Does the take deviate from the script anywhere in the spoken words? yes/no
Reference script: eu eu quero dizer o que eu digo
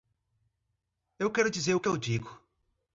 yes